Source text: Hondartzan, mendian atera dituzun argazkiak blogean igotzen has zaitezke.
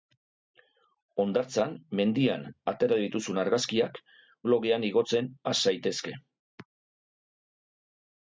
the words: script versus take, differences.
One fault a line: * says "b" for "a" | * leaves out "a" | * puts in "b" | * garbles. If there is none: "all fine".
all fine